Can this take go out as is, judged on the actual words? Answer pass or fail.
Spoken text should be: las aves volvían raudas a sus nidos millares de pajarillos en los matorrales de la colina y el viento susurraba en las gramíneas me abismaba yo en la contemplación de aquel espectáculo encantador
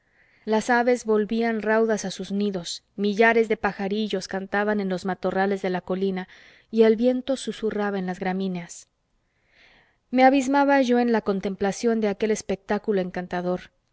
fail